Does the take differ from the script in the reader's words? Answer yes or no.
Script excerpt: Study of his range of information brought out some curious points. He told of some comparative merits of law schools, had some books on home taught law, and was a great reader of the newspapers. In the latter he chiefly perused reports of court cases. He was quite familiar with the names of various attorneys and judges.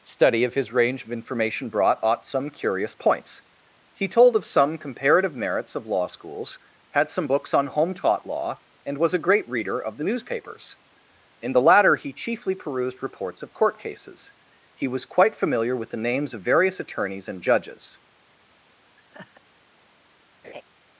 yes